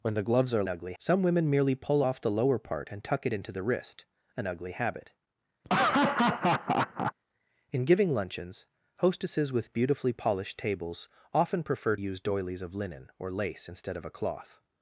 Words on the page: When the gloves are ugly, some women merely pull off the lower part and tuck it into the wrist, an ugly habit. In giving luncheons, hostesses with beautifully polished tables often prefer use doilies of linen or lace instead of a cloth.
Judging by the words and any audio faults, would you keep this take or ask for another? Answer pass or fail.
fail